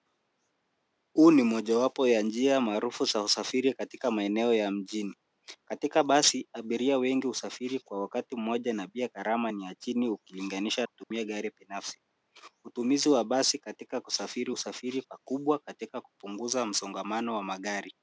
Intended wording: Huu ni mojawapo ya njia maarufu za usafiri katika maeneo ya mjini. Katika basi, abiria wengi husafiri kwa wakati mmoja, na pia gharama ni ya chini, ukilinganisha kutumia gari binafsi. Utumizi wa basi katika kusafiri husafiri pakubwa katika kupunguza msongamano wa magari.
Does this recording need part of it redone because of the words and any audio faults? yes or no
yes